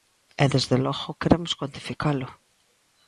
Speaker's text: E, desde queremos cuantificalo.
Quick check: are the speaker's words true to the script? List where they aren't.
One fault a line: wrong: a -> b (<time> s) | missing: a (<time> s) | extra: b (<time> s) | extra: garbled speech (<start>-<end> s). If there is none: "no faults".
extra: logo (0.8 s)